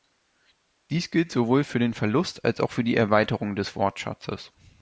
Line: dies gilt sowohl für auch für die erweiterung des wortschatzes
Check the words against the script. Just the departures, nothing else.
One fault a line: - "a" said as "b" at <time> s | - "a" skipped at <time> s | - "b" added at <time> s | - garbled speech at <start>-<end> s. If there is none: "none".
- "den verlust als" added at 1.8 s